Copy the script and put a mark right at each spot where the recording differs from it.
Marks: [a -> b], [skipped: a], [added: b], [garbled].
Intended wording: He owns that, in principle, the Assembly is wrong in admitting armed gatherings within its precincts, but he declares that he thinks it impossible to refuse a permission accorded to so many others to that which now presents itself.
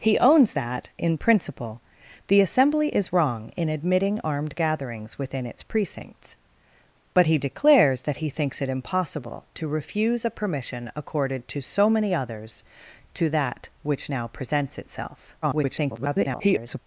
He owns that, in principle, the Assembly is wrong in admitting armed gatherings within its precincts, but he declares that he thinks it impossible to refuse a permission accorded to so many others to that which now presents itself. [garbled]